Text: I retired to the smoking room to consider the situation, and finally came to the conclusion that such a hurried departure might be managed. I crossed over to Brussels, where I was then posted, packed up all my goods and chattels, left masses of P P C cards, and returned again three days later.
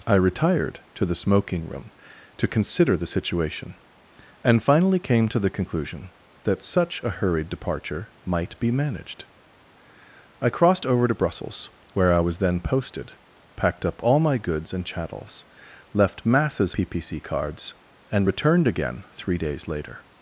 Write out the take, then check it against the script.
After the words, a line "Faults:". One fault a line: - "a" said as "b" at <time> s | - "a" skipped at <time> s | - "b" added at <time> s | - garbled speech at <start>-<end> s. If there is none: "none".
I retired to the smoking room to consider the situation, and finally came to the conclusion that such a hurried departure might be managed. I crossed over to Brussels, where I was then posted, packed up all my goods and chattels, left masses P P C cards, and returned again three days later.
Faults:
- "of" skipped at 16.7 s